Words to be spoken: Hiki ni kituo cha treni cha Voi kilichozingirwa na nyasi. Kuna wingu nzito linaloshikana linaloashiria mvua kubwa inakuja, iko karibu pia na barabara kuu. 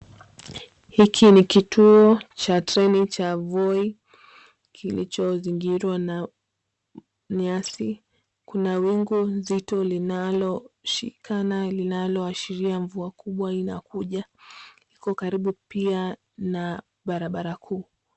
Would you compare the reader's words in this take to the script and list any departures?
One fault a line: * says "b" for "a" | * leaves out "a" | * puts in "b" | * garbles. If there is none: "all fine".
all fine